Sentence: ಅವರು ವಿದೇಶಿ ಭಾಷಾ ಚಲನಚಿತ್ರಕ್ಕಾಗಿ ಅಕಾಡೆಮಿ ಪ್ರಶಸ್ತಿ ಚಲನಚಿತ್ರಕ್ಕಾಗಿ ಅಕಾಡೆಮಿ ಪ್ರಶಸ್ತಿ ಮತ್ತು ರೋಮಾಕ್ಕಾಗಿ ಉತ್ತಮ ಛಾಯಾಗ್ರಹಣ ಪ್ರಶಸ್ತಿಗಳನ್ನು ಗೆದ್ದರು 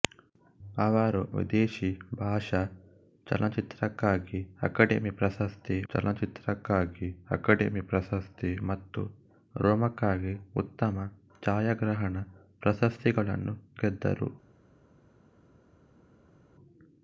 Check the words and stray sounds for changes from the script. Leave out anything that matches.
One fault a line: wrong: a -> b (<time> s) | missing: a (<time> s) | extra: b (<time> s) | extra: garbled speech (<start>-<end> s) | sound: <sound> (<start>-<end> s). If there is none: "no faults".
no faults